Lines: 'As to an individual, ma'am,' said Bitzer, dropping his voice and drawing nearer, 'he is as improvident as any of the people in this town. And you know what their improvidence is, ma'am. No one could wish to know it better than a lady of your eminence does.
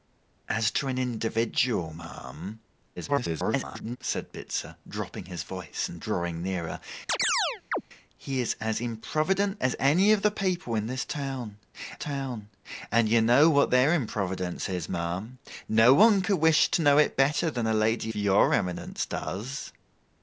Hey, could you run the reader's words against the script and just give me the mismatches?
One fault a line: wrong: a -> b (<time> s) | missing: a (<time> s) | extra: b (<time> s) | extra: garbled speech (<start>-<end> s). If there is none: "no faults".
extra: garbled speech (3.0-4.0 s)
extra: town (12.0 s)
missing: of (18.1 s)